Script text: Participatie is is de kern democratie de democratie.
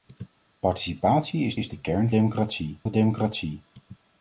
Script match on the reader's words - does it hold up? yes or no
yes